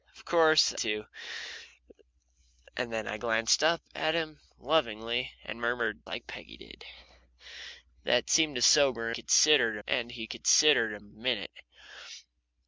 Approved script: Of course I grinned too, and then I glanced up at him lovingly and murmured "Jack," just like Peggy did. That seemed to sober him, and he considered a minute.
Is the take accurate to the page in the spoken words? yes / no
no